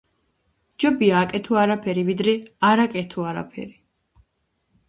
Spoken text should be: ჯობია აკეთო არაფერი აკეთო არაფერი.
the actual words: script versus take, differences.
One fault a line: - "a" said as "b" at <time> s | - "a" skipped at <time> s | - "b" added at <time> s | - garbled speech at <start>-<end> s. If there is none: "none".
- "ვიდრე არ" added at 2.1 s